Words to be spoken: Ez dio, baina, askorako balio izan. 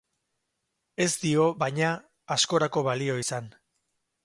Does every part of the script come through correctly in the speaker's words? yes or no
yes